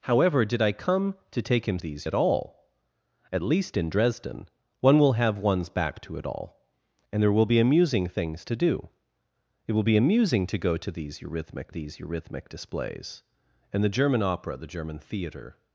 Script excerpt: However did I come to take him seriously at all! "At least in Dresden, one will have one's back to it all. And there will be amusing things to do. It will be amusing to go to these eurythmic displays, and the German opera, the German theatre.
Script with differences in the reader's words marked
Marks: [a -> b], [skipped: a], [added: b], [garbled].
However did I come to take him [seriously -> these] at all! "At least in Dresden, one will have one's back to it all. And there will be amusing things to do. It will be amusing to go to these eurythmic [added: these eurythmic] displays, and the German opera, the German theatre.